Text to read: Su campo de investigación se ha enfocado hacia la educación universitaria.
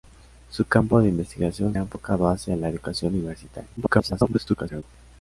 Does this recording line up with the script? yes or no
no